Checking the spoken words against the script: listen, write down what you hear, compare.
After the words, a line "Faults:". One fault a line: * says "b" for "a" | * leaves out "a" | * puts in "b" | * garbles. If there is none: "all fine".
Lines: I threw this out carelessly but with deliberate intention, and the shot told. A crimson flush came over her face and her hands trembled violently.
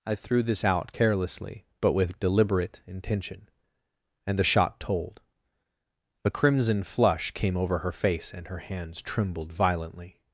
I threw this out carelessly but with deliberate intention, and the shot told. A crimson flush came over her face and her hands trembled violently.
Faults:
all fine